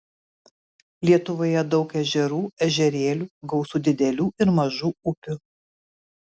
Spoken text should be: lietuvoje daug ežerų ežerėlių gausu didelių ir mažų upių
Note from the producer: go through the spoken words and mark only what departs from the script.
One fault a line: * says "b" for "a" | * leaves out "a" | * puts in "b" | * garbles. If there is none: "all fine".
all fine